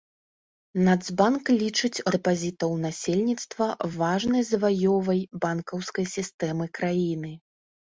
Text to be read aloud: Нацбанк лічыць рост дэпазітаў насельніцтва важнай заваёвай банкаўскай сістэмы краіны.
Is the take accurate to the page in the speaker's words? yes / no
no